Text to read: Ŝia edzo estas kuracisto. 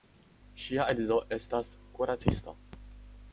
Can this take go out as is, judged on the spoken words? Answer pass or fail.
pass